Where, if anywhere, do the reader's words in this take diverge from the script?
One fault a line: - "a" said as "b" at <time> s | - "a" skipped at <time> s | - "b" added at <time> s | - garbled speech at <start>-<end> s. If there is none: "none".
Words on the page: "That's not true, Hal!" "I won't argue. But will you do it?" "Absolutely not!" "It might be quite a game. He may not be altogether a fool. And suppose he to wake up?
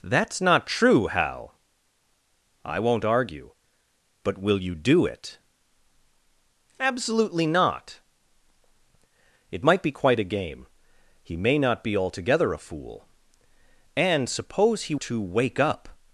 none